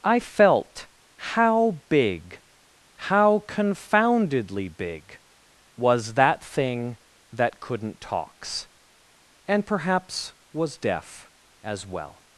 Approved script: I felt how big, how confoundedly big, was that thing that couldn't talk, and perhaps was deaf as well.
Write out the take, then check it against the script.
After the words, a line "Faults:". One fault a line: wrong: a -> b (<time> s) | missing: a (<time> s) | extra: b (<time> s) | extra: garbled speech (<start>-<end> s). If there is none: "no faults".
I felt how big, how confoundedly big, was that thing that couldn't talks, and perhaps was deaf as well.
Faults:
wrong: talk -> talks (8.0 s)